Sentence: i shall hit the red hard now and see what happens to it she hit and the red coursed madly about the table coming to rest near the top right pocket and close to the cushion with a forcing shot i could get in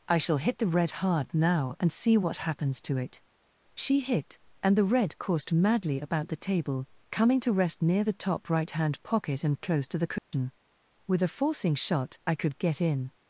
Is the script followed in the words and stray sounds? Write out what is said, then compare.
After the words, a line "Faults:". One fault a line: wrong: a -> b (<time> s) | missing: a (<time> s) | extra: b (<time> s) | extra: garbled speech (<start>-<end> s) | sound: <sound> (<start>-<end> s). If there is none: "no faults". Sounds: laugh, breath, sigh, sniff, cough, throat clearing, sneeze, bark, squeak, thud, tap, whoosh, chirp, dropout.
i shall hit the red hard now and see what happens to it she hit and the red coursed madly about the table coming to rest near the top right hand pocket and close to the cushion with a forcing shot i could get in
Faults:
extra: hand (8.7 s)
sound: dropout (10.2-10.3 s)